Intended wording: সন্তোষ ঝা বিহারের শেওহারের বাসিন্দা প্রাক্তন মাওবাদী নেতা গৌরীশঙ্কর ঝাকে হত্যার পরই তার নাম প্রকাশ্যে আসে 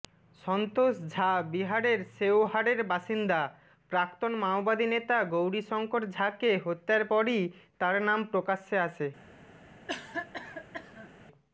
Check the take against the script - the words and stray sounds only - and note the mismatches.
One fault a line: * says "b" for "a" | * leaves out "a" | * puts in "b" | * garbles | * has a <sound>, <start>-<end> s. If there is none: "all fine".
* has a cough, 9.9-11.1 s